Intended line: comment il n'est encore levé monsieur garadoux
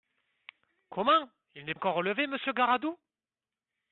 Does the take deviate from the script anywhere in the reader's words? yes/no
no